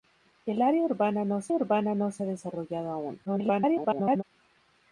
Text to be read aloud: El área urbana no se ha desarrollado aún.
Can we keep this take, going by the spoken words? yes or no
no